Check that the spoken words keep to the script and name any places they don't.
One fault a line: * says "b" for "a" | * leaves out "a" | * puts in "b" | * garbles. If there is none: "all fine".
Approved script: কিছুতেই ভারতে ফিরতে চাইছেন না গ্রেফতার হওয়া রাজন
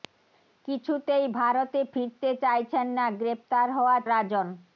all fine